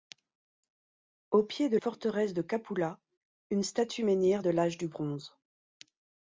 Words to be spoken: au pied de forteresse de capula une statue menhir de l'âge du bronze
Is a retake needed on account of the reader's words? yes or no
no